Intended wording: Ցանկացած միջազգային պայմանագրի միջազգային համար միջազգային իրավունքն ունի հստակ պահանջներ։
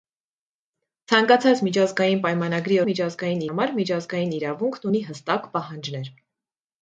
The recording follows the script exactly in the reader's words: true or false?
true